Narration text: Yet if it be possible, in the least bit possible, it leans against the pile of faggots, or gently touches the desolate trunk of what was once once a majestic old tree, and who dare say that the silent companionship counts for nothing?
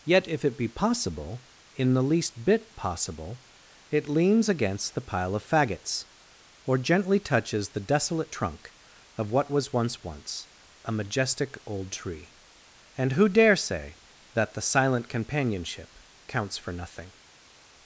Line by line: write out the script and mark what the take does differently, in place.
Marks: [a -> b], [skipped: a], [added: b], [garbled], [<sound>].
Yet if it be possible, in the least bit possible, it leans against the pile of faggots, or gently touches the desolate trunk of what was once once a majestic old tree, and who dare say that the silent companionship counts for nothing?